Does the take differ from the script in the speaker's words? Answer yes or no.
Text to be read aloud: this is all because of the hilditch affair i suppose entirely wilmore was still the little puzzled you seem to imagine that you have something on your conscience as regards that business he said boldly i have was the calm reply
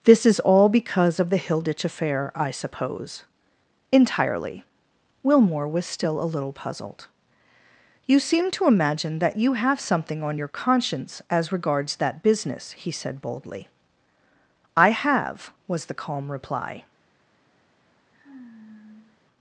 yes